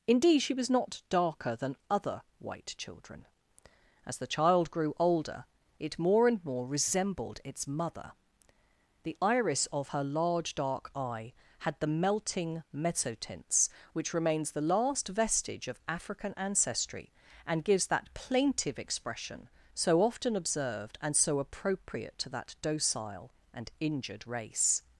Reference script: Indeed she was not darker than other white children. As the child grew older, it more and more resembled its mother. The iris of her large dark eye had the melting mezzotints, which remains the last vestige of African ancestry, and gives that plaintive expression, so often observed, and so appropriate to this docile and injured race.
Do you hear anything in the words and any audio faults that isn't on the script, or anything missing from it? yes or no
yes